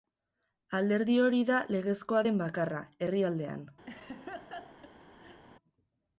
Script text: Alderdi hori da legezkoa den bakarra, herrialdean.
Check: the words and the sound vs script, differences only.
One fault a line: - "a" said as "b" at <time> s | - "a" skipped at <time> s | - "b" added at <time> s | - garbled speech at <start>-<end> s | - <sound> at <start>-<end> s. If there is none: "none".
- laugh at 3.9-5.4 s